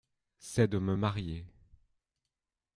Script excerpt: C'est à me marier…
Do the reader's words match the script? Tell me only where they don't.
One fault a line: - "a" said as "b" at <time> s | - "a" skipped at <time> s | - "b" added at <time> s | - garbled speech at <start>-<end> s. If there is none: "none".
- "à" said as "de" at 0.7 s